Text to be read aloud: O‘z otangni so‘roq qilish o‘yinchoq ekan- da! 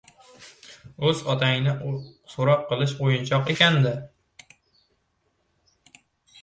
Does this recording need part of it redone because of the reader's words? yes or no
no